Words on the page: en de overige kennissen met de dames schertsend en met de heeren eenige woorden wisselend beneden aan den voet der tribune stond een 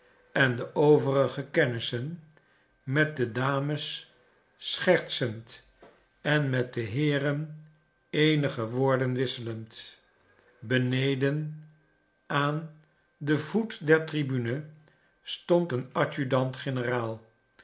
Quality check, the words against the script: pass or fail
pass